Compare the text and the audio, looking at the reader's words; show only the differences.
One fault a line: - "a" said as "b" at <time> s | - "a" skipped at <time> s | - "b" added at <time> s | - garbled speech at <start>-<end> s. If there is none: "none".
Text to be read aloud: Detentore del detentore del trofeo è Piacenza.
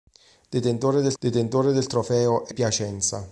none